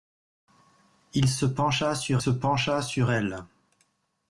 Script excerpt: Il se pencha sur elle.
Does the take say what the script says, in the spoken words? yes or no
no